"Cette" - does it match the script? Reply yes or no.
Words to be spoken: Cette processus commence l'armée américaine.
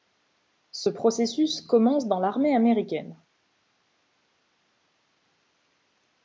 no